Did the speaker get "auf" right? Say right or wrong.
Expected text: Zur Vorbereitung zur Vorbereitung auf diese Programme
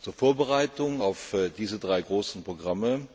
wrong